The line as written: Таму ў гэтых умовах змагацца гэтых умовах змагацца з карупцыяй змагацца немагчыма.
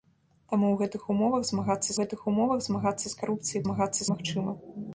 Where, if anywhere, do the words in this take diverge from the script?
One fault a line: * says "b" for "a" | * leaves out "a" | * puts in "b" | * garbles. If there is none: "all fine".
all fine